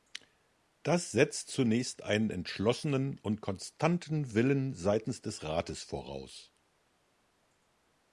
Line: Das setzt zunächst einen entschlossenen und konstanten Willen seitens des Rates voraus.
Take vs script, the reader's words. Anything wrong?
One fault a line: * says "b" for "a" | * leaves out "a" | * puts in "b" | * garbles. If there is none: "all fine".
all fine